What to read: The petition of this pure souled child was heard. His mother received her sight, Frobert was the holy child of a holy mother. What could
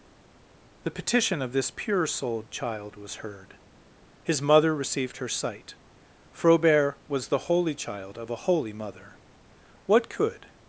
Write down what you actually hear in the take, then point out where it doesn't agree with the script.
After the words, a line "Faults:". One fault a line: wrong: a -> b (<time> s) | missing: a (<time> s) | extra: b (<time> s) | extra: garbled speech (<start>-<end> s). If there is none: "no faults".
The petition of this pure souled child was heard. His mother received her sight, Frobert was the holy child of a holy mother. What could
Faults:
no faults